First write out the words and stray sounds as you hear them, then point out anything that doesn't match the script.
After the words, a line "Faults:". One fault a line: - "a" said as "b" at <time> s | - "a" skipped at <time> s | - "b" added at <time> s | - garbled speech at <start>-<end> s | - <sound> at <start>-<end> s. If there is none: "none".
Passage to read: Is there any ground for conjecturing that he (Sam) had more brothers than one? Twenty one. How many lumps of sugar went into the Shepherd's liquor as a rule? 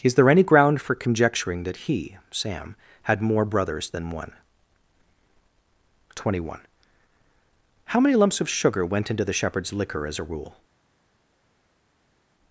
Is there any ground for conjecturing that he (Sam) had more brothers than one? Twenty one. How many lumps of sugar went into the Shepherd's liquor as a rule?
Faults:
none